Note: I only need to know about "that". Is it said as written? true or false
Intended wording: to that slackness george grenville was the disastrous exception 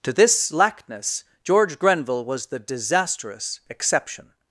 false